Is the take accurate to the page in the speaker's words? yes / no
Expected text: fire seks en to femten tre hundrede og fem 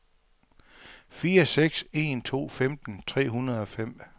yes